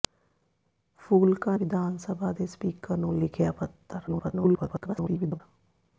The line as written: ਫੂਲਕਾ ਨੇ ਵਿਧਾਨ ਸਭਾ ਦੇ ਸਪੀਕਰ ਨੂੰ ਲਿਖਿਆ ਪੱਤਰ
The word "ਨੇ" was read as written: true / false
false